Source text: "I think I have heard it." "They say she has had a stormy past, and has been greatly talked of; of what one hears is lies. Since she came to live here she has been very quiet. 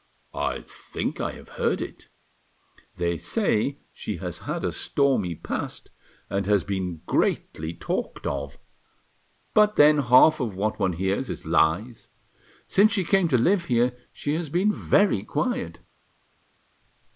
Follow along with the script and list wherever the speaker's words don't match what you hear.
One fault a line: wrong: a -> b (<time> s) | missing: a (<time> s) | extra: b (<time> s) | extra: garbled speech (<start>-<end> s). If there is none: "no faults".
extra: but then half (9.5 s)